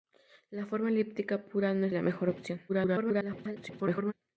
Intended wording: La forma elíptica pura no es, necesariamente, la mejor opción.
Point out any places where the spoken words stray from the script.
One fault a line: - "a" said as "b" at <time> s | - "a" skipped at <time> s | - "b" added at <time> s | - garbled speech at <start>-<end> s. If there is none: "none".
- "necesariamente" skipped at 1.9 s
- garbled speech at 2.7-4.1 s